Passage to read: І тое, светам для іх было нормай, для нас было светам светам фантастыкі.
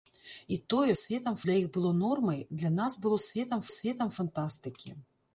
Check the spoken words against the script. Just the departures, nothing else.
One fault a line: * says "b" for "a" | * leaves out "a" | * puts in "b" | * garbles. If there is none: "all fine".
all fine